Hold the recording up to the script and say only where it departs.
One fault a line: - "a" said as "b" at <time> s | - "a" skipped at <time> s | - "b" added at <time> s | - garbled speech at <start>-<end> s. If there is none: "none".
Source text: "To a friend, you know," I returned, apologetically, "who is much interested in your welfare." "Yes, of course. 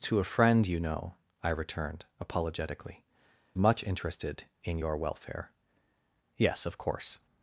- "who is" skipped at 3.0 s